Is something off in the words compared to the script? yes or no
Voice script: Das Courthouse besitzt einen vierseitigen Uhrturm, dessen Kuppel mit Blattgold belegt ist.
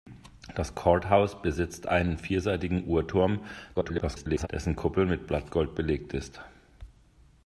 yes